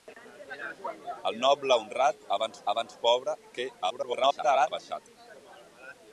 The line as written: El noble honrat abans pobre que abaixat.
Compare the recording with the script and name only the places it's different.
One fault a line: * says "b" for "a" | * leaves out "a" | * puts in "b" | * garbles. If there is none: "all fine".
* puts in "abans"
* garbles